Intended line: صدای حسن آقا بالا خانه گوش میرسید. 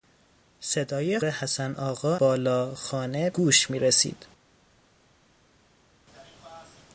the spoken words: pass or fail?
pass